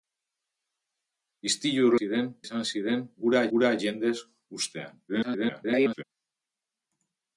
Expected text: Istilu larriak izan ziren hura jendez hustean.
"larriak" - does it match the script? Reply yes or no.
no